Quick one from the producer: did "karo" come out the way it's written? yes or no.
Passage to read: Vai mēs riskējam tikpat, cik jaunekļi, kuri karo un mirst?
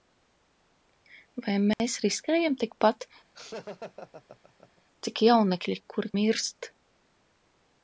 no